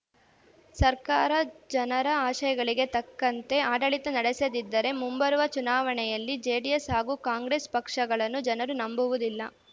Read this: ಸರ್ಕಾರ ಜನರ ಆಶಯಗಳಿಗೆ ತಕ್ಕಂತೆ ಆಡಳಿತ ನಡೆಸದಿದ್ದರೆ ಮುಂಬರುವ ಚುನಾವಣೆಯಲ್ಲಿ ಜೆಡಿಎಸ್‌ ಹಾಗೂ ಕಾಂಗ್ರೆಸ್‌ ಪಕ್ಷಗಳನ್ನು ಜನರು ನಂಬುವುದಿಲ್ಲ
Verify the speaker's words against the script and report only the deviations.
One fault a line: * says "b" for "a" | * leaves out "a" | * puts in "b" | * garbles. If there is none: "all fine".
all fine